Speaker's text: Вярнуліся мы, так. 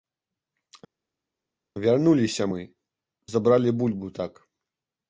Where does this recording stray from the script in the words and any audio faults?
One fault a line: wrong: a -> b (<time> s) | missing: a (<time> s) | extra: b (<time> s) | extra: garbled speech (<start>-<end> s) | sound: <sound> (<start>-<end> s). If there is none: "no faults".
extra: забралі бульбу (3.4 s)